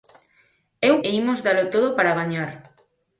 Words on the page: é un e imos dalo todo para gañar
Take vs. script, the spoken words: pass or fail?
pass